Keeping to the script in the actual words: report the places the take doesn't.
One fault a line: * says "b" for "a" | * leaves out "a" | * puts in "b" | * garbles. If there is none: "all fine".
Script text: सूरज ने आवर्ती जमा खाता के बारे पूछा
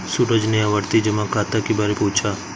all fine